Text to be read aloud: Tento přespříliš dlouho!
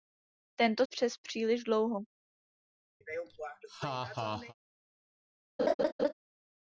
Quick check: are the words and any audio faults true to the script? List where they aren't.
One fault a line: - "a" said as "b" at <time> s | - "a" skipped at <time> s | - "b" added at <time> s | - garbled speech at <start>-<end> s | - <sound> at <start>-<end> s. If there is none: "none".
- laugh at 3.0-4.5 s
- laugh at 5.6-6.1 s